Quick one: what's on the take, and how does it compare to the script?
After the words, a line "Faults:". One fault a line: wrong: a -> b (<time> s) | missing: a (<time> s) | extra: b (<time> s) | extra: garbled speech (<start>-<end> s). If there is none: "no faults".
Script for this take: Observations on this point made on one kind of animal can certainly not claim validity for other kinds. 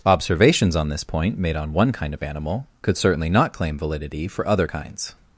Observations on this point made on one kind of animal could certainly not claim validity for other kinds.
Faults:
wrong: can -> could (2.8 s)